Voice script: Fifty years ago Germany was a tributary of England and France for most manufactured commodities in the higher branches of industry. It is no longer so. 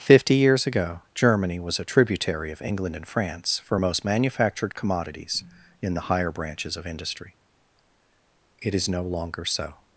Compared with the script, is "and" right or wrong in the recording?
right